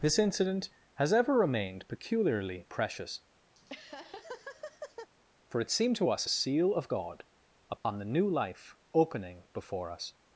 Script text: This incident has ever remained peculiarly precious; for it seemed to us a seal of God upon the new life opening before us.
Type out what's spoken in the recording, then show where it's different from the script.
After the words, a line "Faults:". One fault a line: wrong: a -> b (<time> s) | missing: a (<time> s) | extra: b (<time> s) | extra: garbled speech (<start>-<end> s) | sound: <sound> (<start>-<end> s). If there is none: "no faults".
This incident has ever remained peculiarly precious; for it seemed to us a seal of God upon the new life opening before us.
Faults:
sound: laugh (3.5-5.1 s)
sound: dropout (7.8-7.9 s)